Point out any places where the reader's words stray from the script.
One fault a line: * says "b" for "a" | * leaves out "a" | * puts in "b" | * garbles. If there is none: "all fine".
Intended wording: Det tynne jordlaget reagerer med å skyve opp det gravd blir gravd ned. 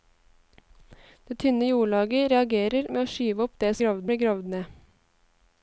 all fine